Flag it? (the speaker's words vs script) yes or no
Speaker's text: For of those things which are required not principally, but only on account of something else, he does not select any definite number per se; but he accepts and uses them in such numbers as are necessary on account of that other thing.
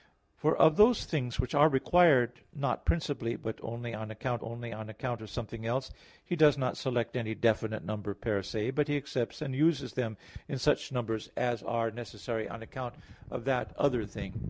yes